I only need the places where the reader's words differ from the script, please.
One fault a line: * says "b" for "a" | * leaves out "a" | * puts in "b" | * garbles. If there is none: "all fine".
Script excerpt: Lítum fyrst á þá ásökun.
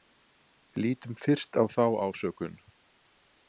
all fine